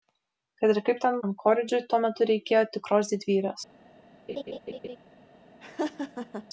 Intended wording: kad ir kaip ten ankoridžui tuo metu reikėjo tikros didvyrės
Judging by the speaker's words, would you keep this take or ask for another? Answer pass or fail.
pass